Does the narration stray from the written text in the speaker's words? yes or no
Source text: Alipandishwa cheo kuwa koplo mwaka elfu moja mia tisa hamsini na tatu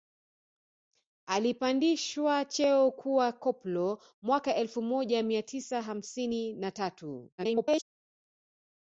yes